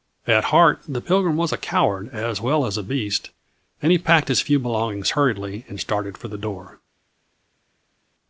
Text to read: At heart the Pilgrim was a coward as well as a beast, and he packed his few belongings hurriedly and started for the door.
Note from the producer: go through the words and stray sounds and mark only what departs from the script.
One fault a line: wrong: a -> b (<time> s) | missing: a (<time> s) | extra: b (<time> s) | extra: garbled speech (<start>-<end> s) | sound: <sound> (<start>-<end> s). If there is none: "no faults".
no faults